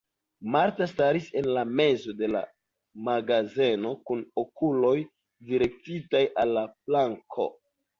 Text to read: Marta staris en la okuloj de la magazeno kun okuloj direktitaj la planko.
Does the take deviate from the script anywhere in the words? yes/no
yes